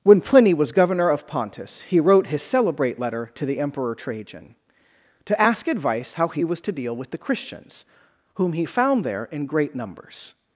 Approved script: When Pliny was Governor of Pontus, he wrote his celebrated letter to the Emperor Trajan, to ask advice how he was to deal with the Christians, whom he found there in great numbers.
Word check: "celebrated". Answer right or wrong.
wrong